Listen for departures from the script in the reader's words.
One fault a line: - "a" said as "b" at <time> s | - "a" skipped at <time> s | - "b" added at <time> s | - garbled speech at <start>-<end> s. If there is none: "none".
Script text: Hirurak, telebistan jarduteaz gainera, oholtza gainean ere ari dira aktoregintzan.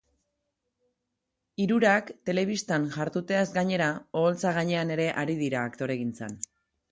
none